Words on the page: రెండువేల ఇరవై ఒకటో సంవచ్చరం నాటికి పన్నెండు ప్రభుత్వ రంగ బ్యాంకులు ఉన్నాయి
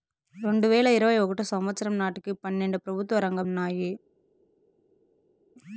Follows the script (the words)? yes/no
no